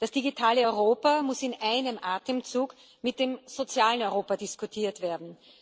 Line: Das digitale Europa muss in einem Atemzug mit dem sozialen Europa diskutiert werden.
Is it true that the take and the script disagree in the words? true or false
false